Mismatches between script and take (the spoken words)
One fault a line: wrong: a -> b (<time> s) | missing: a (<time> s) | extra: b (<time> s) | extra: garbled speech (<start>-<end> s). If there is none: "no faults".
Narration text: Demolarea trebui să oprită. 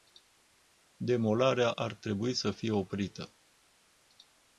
extra: ar (1.7 s)
extra: fie (2.5 s)